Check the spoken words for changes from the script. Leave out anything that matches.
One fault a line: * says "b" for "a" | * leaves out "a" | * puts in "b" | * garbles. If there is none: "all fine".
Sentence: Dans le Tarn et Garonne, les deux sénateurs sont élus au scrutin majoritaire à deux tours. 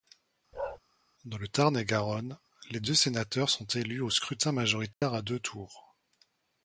all fine